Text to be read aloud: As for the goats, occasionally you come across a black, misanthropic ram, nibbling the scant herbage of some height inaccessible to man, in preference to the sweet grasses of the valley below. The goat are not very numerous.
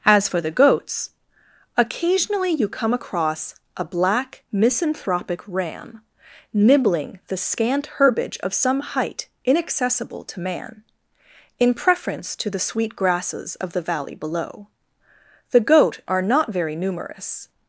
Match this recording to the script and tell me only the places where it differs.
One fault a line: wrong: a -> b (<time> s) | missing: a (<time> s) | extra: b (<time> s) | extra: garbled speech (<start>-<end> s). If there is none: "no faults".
no faults